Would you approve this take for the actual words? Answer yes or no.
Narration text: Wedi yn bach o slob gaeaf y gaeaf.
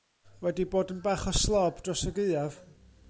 no